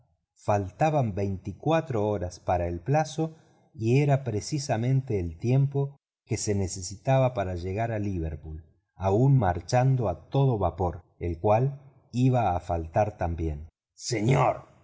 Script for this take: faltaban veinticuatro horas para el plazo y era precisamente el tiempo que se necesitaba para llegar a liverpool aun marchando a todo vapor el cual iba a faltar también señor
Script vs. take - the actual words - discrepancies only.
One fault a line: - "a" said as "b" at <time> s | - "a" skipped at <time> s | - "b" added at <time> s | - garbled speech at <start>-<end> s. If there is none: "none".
none